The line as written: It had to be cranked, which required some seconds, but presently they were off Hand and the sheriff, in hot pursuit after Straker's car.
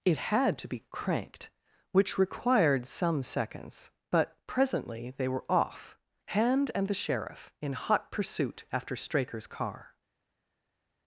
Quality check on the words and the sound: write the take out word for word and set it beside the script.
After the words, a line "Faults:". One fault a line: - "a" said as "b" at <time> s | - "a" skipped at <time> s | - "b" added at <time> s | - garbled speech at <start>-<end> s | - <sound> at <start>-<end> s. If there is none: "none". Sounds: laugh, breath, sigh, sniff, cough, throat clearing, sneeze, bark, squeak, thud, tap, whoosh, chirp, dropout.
It had to be cranked, which required some seconds, but presently they were off Hand and the sheriff, in hot pursuit after Straker's car.
Faults:
none